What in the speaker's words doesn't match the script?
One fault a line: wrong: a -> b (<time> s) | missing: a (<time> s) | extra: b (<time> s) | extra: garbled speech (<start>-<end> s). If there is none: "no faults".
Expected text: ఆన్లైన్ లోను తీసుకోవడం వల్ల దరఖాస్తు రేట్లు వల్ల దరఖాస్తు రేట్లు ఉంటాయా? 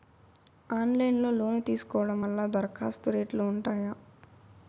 extra: లో (1.2 s)
missing: వల్ల దరఖాస్తు రేట్లు (3.4 s)